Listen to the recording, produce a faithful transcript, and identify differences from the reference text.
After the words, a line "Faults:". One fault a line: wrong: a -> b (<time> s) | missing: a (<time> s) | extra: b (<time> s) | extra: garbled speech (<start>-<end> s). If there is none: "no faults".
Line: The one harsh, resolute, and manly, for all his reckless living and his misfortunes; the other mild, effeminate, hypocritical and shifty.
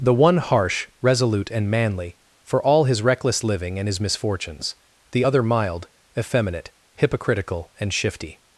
The one harsh, resolute, and manly, for all his reckless living and his misfortunes; the other mild, effeminate, hypocritical and shifty.
Faults:
no faults